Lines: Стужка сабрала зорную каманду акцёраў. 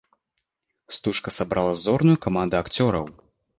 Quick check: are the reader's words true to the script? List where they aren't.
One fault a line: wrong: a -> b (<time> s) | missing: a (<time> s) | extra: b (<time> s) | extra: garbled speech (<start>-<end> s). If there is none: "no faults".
no faults